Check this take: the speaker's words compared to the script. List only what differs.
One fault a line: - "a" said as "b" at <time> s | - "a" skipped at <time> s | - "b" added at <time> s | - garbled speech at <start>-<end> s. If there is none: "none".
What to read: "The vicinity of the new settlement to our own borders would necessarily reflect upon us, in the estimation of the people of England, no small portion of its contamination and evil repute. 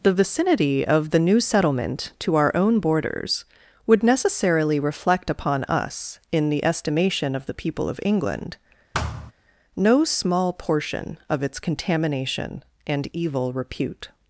none